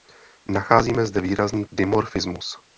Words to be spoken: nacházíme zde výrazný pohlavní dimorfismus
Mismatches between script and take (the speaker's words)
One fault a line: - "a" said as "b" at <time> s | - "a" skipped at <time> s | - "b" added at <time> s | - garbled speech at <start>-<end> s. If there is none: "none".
- "pohlavní" skipped at 1.6 s